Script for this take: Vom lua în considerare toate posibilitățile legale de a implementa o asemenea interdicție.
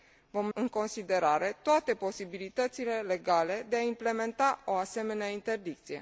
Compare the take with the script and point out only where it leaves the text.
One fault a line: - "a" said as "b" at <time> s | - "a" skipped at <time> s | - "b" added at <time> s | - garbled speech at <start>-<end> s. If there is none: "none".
- "lua" skipped at 0.5 s